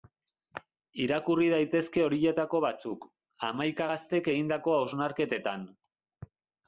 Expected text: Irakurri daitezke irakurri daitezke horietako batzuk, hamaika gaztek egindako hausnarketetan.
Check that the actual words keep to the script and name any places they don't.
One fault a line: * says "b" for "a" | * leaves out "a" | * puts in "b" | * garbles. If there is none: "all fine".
* leaves out "irakurri daitezke"